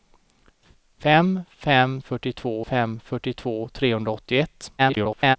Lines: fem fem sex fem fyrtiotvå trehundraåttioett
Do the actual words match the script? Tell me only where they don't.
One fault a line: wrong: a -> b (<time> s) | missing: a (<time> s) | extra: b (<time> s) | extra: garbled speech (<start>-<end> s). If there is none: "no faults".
wrong: sex -> fyrtiotvå (2.0 s)
extra: garbled speech (4.8-5.4 s)